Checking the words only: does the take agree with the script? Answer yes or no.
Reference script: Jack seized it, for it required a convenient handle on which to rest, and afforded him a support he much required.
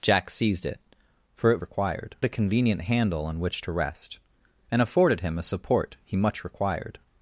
yes